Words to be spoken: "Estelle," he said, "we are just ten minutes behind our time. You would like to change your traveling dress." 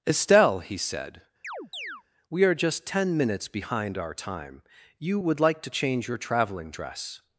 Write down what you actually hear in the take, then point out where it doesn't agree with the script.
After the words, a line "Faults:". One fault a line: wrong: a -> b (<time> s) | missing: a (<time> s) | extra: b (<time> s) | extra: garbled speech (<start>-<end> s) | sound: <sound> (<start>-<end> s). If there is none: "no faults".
"Estelle," he said, "we are just ten minutes behind our time. You would like to change your traveling dress."
Faults:
sound: chirp (1.4-2.0 s)